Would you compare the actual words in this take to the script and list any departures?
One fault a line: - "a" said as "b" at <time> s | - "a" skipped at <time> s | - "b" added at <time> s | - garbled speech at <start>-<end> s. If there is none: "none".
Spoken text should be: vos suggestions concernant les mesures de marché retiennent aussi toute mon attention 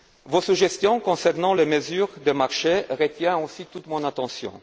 none